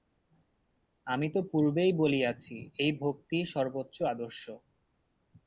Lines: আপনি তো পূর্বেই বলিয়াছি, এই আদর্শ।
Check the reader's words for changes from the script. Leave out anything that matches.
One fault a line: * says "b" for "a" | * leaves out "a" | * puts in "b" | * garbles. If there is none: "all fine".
* says "আমি" for "আপনি"
* puts in "ভক্তিই সর্বোচ্চ"